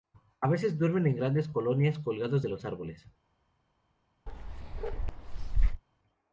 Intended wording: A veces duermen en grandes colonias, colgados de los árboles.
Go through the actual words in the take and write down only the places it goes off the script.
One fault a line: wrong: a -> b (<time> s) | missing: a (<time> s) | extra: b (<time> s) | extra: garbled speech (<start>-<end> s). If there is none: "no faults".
no faults